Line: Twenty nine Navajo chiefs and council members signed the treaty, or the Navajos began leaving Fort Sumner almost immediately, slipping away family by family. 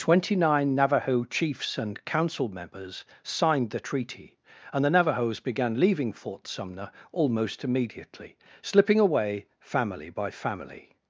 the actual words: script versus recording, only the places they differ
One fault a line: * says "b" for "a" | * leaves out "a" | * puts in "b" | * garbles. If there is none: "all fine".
* says "and" for "or"